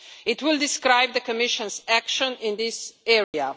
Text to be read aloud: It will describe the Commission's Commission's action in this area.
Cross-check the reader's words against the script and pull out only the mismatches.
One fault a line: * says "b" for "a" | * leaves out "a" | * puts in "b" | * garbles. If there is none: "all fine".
* leaves out "Commission's"